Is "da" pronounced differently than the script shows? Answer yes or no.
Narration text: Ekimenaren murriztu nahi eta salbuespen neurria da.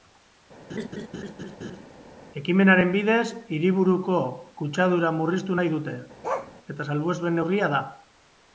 no